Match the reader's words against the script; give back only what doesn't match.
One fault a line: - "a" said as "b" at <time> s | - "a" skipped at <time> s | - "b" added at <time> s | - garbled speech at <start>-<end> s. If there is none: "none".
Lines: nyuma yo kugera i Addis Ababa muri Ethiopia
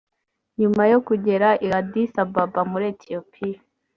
none